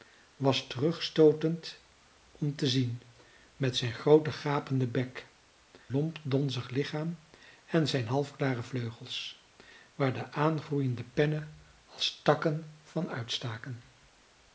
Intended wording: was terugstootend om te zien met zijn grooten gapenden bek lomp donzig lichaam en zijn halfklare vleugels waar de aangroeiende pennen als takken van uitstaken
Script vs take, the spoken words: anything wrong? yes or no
no